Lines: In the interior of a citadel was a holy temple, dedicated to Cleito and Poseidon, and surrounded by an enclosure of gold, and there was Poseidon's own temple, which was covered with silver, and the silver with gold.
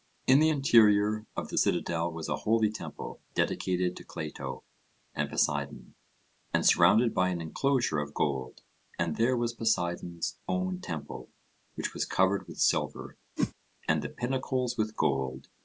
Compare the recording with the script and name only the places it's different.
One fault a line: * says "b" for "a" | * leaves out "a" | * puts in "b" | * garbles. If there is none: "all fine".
* says "the" for "a"
* says "pinnacles" for "silver"